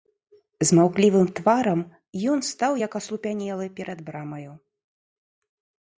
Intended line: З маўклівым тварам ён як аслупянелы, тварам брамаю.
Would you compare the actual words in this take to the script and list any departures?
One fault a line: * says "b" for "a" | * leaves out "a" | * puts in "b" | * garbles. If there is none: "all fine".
* puts in "стаў"
* says "перад" for "тварам"